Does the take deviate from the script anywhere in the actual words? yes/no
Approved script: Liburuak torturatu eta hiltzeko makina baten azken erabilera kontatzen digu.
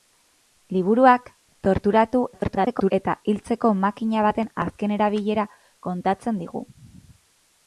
yes